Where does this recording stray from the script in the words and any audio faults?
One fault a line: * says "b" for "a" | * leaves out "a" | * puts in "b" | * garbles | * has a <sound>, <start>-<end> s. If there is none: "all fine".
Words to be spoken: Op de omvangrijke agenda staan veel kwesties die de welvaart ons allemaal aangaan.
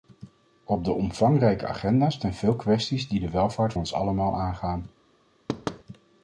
* has a thud, 5.5-5.8 s